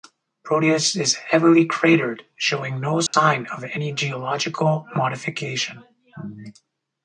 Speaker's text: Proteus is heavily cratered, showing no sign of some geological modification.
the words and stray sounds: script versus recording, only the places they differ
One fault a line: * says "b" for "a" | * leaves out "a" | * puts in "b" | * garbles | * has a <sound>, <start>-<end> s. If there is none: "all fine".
* has a dropout, 3.1-3.1 s
* says "any" for "some"